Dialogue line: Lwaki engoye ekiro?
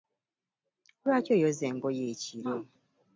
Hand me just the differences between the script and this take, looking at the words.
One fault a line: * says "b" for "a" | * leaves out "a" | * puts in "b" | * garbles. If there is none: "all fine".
* puts in "oyoza"